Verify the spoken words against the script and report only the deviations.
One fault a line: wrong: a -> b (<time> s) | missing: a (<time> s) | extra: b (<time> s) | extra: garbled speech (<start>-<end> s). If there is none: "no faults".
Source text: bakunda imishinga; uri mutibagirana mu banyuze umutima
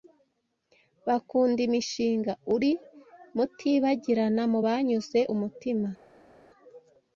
no faults